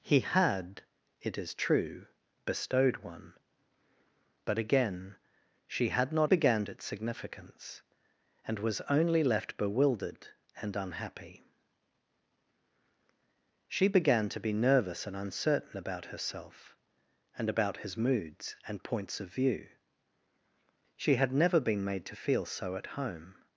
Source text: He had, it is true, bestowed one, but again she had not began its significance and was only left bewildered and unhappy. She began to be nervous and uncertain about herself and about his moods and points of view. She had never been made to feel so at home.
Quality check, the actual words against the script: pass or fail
pass